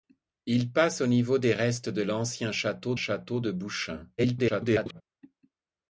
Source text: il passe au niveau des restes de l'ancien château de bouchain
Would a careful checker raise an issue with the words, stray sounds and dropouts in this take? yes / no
yes